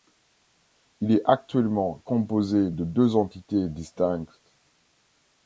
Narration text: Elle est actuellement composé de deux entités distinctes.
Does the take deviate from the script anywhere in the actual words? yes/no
yes